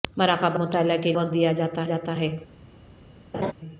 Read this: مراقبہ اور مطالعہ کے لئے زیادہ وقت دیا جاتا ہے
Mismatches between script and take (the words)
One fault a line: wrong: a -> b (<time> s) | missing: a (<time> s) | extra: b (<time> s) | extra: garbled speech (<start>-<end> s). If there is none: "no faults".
missing: اور (0.6 s)
missing: لئے زیادہ (1.1 s)
extra: جاتا (1.8 s)